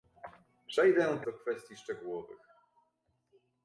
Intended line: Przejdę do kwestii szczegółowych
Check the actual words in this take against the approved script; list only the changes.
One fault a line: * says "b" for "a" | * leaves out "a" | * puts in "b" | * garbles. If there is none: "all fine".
all fine